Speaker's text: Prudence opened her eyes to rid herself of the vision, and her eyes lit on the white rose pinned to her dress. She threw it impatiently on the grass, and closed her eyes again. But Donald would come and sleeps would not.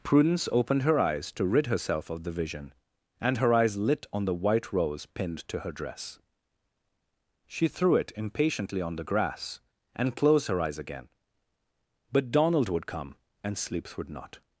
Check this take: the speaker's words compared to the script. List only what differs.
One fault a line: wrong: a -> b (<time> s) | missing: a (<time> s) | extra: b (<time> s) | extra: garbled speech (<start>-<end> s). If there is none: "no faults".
no faults